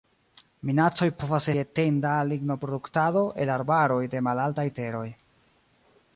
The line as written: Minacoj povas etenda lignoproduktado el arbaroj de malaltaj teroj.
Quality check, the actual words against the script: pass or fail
pass